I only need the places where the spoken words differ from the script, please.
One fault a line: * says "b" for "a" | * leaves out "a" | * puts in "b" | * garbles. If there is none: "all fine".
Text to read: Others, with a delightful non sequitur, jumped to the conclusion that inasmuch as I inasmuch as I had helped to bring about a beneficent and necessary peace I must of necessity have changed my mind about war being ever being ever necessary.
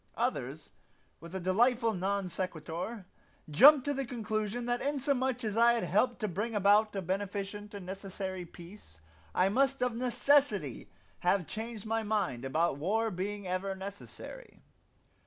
* leaves out "inasmuch as I"
* leaves out "being ever"